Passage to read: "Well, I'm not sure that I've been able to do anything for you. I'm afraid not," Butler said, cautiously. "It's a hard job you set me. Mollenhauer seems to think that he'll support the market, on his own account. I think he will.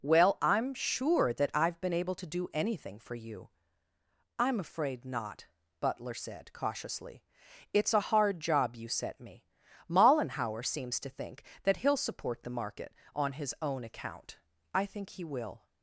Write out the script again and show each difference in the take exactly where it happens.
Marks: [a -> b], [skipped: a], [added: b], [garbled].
"Well, I'm [skipped: not] sure that I've been able to do anything for you. I'm afraid not," Butler said, cautiously. "It's a hard job you set me. Mollenhauer seems to think that he'll support the market, on his own account. I think he will.